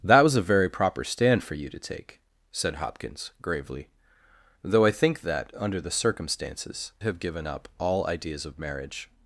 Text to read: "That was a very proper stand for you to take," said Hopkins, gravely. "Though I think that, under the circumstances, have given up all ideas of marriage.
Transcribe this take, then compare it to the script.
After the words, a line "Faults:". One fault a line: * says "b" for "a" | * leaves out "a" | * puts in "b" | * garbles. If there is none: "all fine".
"That was a very proper stand for you to take," said Hopkins, gravely. "Though I think that, under the circumstances, have given up all ideas of marriage.
Faults:
all fine